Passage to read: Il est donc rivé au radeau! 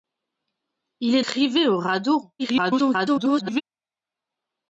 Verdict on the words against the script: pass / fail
fail